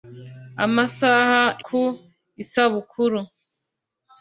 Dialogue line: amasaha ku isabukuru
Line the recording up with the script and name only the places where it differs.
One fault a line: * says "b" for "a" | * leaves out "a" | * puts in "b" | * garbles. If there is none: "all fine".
all fine